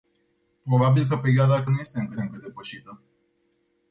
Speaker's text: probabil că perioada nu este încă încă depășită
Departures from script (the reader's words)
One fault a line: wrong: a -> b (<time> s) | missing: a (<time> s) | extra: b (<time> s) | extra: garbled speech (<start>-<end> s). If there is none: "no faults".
no faults